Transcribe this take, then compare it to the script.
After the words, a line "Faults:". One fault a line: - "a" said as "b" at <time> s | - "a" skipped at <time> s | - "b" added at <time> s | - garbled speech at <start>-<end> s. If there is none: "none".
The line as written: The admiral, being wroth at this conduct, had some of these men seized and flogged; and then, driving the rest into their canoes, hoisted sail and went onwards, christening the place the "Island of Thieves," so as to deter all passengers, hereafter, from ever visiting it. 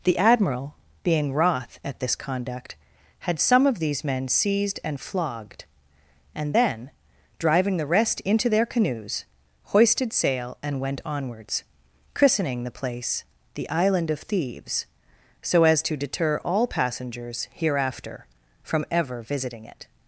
The admiral, being wroth at this conduct, had some of these men seized and flogged; and then, driving the rest into their canoes, hoisted sail and went onwards, christening the place the "Island of Thieves," so as to deter all passengers, hereafter, from ever visiting it.
Faults:
none